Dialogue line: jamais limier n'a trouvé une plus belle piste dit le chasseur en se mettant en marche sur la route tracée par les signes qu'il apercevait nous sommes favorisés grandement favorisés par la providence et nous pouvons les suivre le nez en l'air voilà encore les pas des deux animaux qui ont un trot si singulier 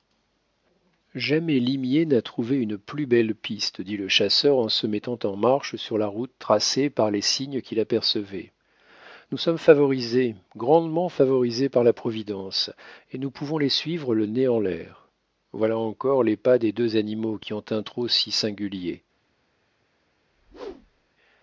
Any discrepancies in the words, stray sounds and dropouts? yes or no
yes